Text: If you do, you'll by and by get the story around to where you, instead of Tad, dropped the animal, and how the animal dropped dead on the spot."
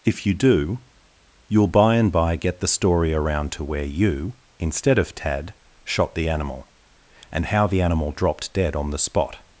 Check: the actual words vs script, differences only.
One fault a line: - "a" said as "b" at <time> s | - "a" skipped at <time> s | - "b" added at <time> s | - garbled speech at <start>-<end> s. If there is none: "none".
- "dropped" said as "shot" at 5.8 s